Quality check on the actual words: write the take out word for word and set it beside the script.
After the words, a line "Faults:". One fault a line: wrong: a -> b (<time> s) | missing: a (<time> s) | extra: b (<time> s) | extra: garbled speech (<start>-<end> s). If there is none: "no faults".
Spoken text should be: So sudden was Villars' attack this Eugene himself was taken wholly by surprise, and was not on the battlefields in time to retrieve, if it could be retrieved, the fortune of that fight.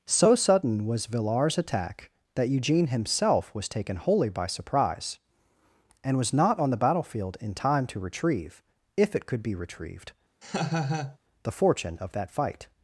So sudden was Villars' attack that Eugene himself was taken wholly by surprise, and was not on the battlefield in time to retrieve, if it could be retrieved, the fortune of that fight.
Faults:
wrong: this -> that (2.4 s)
wrong: battlefields -> battlefield (6.8 s)